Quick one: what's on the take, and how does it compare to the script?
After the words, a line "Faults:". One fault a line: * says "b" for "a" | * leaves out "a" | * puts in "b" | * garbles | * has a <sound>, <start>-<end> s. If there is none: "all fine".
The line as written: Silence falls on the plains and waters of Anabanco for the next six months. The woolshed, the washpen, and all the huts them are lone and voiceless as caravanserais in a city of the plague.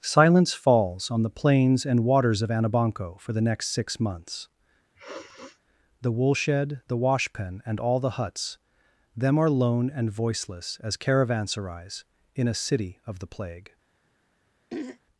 Silence falls on the plains and waters of Anabanco for the next six months. The woolshed, the washpen, and all the huts them are lone and voiceless as caravanserais in a city of the plague.
Faults:
* has a sniff, 5.0-5.6 s
* has a throat clearing, 14.7-15.0 s